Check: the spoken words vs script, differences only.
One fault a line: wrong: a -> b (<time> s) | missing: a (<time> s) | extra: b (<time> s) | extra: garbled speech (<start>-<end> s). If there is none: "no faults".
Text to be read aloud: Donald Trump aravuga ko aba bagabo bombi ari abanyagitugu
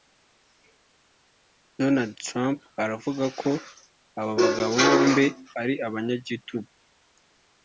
no faults